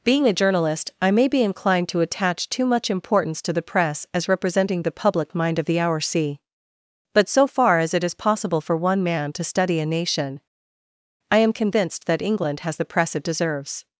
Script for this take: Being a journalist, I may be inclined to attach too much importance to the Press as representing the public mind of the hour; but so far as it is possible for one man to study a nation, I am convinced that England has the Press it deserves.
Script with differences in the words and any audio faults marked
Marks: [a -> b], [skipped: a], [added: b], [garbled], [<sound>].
Being a journalist, I may be inclined to attach too much importance to the Press as representing the public mind of the hour; [added: c] but so far as it is possible for one man to study a nation, I am convinced that England has the Press it deserves.